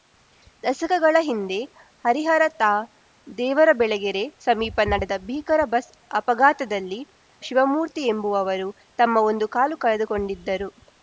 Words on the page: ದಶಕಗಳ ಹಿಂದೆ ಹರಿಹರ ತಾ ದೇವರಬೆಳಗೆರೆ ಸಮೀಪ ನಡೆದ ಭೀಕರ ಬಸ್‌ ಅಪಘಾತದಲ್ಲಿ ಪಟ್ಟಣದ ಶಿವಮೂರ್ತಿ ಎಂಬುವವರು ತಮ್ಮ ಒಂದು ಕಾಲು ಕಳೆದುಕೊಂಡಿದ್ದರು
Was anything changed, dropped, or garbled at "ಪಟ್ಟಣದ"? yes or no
yes